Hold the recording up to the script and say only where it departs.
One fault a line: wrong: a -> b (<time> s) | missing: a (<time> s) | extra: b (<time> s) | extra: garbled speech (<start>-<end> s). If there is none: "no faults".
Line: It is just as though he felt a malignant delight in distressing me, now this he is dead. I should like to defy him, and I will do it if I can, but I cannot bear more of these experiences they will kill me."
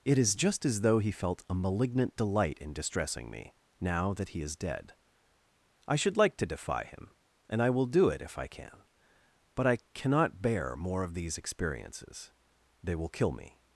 wrong: this -> that (4.1 s)